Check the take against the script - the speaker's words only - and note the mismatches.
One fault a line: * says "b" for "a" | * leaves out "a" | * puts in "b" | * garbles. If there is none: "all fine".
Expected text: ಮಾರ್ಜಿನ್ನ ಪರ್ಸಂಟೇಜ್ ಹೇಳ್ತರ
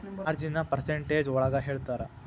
* puts in "ಒಳಗ"